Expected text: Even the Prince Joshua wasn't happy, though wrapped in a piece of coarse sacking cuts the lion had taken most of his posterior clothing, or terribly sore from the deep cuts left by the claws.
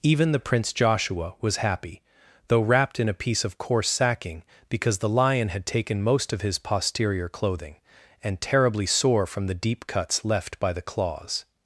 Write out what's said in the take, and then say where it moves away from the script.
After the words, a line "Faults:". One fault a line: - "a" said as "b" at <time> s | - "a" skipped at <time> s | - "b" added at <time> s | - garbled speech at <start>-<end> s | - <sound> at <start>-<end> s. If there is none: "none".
Even the Prince Joshua was happy, though wrapped in a piece of coarse sacking because the lion had taken most of his posterior clothing, and terribly sore from the deep cuts left by the claws.
Faults:
- "wasn't" said as "was" at 1.4 s
- "cuts" said as "because" at 4.7 s
- "or" said as "and" at 8.2 s